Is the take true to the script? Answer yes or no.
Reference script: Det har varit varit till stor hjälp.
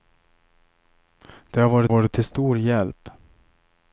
yes